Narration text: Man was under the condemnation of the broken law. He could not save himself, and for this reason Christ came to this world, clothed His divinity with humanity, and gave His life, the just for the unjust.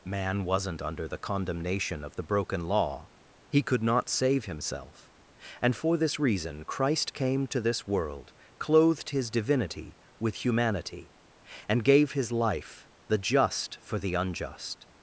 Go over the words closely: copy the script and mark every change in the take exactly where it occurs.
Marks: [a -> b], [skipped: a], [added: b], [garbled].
Man [was -> wasn't] under the condemnation of the broken law. He could not save himself, and for this reason Christ came to this world, clothed His divinity with humanity, and gave His life, the just for the unjust.